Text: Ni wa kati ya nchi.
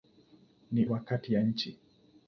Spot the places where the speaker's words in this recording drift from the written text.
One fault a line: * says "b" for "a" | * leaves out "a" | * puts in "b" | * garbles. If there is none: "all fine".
all fine